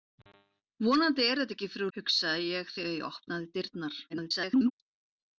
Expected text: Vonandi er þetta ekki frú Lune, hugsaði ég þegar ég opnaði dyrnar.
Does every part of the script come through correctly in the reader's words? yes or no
no